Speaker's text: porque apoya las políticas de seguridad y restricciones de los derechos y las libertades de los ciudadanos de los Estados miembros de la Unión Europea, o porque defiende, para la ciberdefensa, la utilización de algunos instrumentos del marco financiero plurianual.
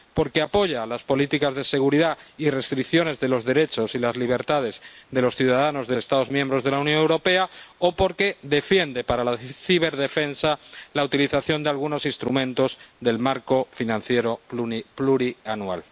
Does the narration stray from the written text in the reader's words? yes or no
yes